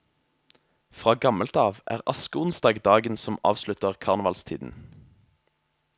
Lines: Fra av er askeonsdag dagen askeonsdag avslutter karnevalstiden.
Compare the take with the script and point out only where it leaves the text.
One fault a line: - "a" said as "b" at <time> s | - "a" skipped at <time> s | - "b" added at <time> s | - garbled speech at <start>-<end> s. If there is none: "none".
- "gammelt" added at 1.2 s
- "askeonsdag" said as "som" at 3.2 s